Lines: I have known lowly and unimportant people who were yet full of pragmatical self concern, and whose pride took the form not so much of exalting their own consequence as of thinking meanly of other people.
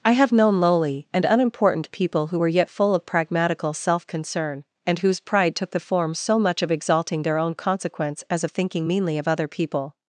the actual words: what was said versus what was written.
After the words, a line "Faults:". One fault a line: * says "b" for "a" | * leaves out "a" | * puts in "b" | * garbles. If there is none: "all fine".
I have known lowly and unimportant people who were yet full of pragmatical self concern, and whose pride took the form so much of exalting their own consequence as of thinking meanly of other people.
Faults:
* leaves out "not"